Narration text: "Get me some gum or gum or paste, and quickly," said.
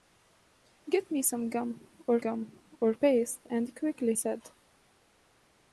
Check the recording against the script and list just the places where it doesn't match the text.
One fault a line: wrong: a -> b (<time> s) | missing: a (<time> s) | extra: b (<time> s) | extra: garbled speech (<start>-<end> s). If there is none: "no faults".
no faults